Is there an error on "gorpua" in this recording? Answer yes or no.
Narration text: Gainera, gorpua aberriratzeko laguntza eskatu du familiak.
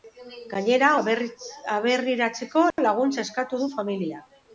yes